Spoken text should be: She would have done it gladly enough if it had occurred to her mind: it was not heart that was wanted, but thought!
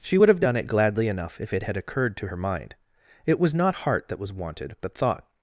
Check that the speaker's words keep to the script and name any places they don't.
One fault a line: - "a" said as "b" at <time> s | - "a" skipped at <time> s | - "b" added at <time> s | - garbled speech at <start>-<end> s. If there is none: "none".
none